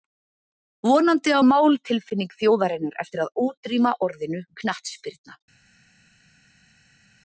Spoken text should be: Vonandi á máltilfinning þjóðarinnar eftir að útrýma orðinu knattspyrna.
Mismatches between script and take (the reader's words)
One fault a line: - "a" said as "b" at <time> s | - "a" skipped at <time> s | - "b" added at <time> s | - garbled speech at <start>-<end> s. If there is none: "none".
none